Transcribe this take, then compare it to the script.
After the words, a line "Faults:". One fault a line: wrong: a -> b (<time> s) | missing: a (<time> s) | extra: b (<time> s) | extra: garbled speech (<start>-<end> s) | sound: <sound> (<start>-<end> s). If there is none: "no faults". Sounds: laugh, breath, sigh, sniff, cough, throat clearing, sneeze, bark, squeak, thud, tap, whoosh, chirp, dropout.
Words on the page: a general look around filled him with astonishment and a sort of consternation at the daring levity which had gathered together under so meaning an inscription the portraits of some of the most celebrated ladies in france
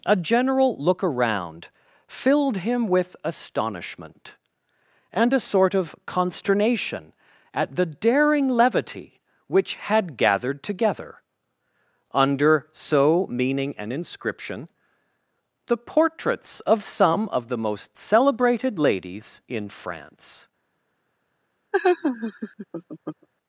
a general look around filled him with astonishment and a sort of consternation at the daring levity which had gathered together under so meaning an inscription the portraits of some of the most celebrated ladies in france
Faults:
sound: laugh (21.7-23.3 s)